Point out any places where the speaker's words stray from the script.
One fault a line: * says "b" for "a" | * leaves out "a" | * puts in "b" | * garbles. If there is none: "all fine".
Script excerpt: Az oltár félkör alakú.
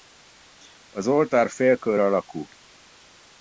all fine